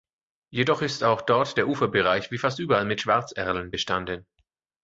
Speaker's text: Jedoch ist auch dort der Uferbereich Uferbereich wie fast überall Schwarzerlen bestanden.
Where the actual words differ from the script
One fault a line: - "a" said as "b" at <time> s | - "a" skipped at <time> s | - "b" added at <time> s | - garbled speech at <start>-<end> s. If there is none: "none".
- "Uferbereich" skipped at 2.3 s
- "mit" added at 2.8 s